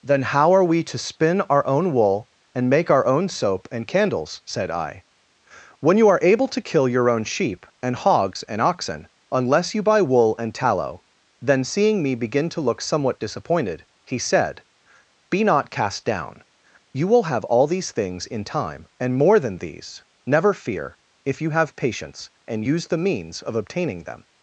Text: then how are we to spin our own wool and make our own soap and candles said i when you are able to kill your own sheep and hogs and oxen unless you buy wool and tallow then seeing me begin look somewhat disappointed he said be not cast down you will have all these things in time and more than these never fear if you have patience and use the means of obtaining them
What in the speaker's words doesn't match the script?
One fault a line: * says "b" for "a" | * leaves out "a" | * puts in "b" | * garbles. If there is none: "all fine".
* puts in "to"